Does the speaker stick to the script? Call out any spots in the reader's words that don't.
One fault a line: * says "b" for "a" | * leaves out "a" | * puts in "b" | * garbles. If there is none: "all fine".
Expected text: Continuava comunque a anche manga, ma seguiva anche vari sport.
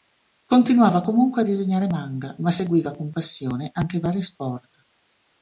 * says "disegnare" for "anche"
* puts in "con passione"